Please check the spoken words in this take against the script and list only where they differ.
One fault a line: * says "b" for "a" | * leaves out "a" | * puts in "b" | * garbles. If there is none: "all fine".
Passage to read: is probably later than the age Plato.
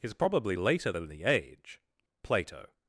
all fine